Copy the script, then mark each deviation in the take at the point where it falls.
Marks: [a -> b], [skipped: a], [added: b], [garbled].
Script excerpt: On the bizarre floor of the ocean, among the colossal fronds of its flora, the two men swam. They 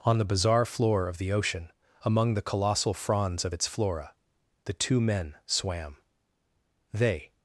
On the bizarre floor of the ocean, among the colossal fronds of its flora, the two men swam. They